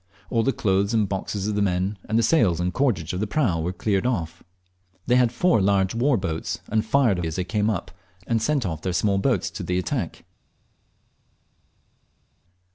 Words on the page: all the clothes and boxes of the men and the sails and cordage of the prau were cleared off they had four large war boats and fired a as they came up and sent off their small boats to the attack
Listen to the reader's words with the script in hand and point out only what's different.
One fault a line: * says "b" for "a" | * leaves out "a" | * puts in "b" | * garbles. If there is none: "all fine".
all fine